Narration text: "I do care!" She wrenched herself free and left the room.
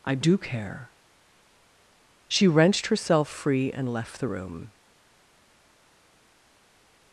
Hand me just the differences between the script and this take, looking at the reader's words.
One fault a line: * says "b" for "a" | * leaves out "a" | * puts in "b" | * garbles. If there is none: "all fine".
all fine